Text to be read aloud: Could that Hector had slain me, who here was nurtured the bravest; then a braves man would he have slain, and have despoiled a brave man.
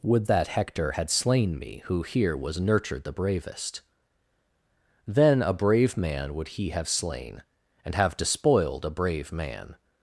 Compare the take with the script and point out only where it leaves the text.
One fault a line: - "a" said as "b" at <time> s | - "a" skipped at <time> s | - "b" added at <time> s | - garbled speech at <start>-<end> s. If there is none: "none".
- "Could" said as "Would" at 0.0 s
- "braves" said as "brave" at 5.5 s